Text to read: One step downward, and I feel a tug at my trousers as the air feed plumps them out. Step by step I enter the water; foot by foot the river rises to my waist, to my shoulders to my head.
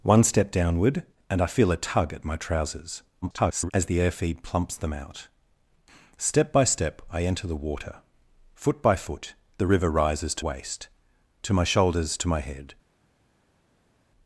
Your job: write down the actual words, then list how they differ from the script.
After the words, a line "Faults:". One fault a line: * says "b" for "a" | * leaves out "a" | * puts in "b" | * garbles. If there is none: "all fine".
One step downward, and I feel a tug at my trousers [garbled] as the air feed plumps them out. Step by step I enter the water; foot by foot the river rises to waist, to my shoulders to my head.
Faults:
* garbles
* leaves out "my"